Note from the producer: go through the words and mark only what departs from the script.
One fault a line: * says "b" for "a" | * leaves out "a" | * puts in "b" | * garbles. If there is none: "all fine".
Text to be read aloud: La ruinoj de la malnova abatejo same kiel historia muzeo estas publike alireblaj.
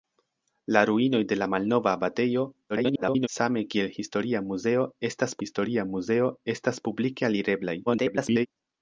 * garbles
* puts in "historia muzeo estas"
* garbles